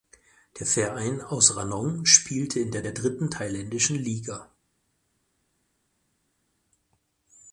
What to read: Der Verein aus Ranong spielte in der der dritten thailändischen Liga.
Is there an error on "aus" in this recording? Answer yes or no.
no